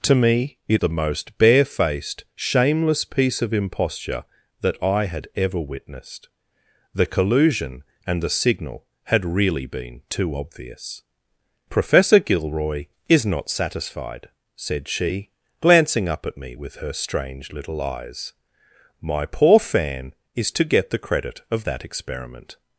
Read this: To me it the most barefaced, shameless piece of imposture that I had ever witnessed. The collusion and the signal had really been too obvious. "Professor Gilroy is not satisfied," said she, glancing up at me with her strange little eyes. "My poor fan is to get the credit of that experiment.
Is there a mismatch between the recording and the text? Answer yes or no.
no